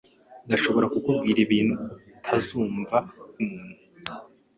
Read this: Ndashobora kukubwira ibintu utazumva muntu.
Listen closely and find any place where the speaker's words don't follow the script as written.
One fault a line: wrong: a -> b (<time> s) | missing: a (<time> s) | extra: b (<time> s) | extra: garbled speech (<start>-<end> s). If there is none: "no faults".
no faults